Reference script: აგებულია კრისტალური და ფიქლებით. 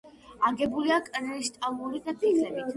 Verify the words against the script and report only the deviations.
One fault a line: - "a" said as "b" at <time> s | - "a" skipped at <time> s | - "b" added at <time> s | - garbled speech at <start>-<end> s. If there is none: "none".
none